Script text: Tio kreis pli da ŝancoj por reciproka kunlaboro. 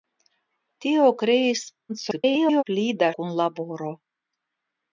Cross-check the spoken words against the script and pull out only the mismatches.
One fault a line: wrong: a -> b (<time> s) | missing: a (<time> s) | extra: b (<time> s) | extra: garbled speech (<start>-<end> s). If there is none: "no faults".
extra: garbled speech (1.9-2.6 s)
missing: ŝancoj por reciproka (3.1 s)